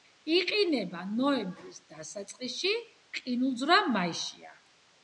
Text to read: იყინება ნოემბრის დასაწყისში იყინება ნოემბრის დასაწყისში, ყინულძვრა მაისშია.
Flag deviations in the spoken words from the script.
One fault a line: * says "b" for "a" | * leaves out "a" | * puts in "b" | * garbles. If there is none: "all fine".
* leaves out "იყინება ნოემბრის დასაწყისში"